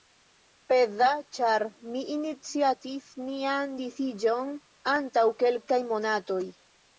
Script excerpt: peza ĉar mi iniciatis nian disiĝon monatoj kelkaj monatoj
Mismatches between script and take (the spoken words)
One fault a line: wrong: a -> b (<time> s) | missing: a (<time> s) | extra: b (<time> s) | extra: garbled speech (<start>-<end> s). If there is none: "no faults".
wrong: monatoj -> antaŭ (5.0 s)